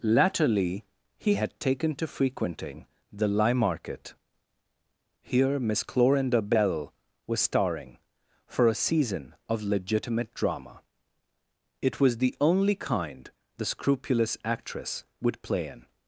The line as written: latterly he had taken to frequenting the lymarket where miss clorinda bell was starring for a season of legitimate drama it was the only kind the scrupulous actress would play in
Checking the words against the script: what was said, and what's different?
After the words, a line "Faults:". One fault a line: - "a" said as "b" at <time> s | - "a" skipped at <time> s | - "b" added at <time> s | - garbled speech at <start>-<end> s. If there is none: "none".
latterly he had taken to frequenting the lymarket here miss clorinda bell was starring for a season of legitimate drama it was the only kind the scrupulous actress would play in
Faults:
- "where" said as "here" at 5.2 s